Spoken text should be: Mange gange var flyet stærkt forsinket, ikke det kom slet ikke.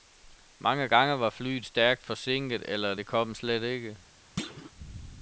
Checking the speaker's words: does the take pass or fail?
fail